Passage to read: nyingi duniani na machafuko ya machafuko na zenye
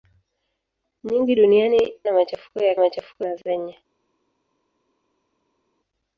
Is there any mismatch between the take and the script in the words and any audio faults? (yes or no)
no